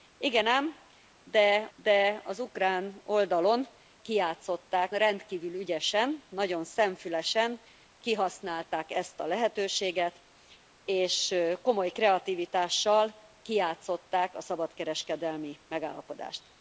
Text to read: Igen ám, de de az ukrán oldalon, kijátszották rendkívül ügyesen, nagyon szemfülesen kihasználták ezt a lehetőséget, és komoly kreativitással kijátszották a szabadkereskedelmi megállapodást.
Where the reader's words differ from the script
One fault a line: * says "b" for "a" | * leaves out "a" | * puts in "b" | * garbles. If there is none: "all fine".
all fine